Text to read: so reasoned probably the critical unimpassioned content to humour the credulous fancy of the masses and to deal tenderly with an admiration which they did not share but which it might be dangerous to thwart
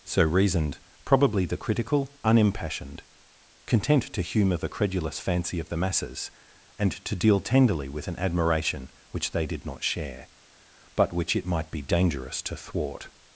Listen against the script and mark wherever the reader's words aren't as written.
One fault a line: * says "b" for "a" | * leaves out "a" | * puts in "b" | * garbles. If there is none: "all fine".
all fine